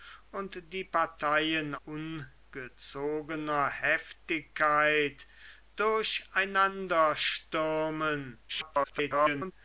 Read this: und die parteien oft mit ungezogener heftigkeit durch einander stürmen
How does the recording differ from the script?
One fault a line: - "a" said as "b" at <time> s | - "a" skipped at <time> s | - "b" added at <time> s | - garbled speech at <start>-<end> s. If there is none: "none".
- "oft mit" skipped at 1.8 s
- garbled speech at 8.5-9.5 s